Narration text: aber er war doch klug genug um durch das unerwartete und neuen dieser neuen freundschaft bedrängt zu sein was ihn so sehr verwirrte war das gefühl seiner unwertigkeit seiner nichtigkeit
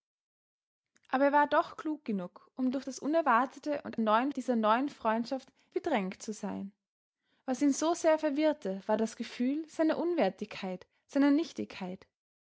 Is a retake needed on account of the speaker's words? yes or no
no